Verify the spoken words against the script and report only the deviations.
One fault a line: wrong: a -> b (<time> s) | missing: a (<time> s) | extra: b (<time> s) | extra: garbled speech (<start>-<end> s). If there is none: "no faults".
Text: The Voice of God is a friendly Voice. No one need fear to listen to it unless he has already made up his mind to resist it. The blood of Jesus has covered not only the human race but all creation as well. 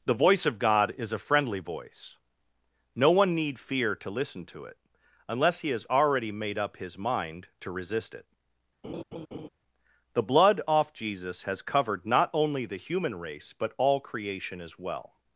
wrong: of -> off (10.7 s)